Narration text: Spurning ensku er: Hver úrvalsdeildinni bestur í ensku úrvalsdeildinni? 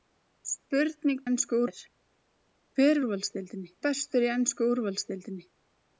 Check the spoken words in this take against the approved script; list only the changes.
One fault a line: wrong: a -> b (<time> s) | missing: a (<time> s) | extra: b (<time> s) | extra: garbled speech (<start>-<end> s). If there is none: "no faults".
no faults